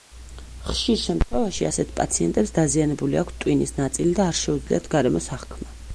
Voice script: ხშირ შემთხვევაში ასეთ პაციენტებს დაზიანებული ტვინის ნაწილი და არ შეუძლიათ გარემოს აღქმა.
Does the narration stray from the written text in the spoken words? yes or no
yes